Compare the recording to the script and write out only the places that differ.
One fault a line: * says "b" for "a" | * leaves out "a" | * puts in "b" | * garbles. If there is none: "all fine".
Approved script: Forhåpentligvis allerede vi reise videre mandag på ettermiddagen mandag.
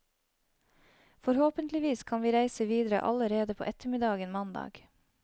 * says "kan" for "allerede"
* says "allerede" for "mandag"